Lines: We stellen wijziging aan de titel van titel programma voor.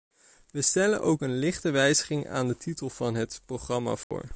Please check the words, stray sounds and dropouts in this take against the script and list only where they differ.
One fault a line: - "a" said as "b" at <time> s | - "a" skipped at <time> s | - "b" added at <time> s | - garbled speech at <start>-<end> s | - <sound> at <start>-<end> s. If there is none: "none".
- "ook een lichte" added at 1.0 s
- "titel" said as "het" at 3.1 s
- dropout at 4.0-4.1 s